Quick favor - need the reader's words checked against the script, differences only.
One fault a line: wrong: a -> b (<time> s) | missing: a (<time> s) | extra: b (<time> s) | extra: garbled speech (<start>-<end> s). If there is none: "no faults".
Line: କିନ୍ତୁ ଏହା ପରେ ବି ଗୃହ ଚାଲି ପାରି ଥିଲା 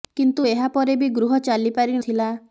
no faults